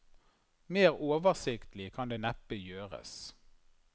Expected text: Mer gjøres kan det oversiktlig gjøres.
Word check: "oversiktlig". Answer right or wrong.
wrong